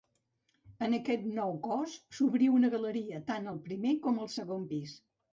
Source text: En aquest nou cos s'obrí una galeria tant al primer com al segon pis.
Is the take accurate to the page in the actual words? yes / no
yes